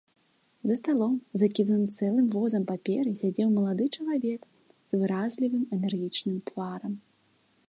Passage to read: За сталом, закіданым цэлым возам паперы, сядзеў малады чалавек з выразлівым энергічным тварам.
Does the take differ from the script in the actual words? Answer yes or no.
no